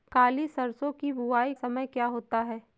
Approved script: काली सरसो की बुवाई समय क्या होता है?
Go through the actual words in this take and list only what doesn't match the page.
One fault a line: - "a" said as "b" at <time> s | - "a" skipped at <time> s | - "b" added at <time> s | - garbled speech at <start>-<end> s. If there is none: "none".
none